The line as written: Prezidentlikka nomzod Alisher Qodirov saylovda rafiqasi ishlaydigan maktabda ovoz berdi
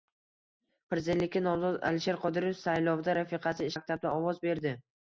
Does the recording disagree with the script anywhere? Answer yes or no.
yes